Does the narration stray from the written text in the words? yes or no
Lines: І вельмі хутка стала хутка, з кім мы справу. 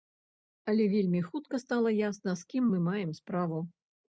yes